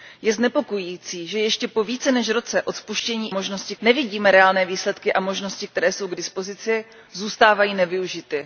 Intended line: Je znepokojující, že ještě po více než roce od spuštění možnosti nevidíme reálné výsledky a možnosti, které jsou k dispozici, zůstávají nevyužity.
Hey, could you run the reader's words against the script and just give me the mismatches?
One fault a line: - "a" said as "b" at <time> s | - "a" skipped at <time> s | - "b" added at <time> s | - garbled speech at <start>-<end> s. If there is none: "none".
none